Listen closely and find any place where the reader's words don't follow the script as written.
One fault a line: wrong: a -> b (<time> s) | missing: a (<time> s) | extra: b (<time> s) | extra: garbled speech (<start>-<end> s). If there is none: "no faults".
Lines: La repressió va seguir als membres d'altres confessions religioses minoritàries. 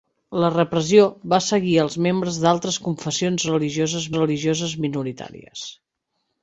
extra: religioses (4.2 s)